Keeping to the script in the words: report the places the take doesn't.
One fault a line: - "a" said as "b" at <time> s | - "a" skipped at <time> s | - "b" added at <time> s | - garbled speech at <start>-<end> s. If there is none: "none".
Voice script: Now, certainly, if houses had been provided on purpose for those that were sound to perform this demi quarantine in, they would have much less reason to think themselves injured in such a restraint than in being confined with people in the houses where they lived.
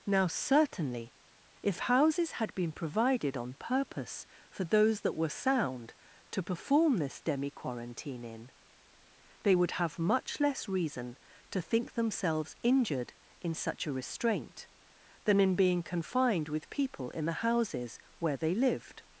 none